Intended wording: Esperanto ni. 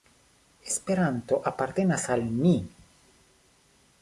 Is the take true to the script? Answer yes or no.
no